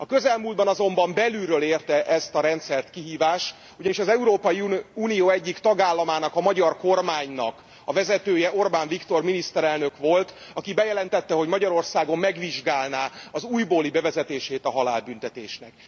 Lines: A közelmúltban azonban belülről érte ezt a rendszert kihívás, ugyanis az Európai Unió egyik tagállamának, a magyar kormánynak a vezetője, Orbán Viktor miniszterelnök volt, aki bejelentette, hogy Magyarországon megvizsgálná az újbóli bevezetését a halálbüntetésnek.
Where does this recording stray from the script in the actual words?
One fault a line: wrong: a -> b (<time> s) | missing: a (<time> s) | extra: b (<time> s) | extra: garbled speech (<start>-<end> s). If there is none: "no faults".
no faults